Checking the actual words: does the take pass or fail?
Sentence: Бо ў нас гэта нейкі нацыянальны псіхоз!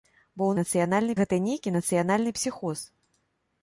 fail